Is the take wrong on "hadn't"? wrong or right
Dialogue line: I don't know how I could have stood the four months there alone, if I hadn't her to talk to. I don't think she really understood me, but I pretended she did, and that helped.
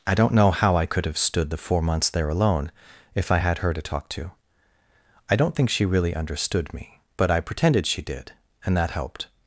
wrong